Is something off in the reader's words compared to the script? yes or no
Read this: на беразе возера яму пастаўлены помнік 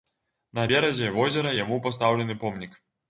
no